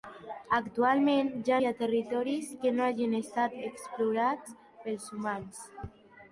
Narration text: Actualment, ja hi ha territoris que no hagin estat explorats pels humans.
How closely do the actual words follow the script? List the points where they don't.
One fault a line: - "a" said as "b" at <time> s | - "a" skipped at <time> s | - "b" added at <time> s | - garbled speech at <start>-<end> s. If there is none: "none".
none